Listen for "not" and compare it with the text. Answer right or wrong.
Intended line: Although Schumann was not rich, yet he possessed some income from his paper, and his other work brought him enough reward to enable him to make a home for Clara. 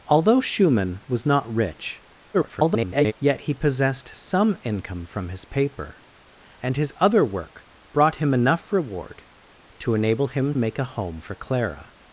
right